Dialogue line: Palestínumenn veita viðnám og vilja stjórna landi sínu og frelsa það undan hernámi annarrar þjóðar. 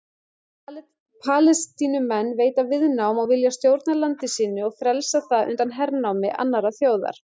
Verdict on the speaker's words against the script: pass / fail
pass